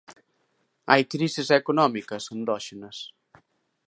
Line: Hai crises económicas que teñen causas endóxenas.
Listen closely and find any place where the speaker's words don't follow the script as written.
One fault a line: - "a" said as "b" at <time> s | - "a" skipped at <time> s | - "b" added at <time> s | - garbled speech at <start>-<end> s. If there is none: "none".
- "que teñen causas" skipped at 2.2 s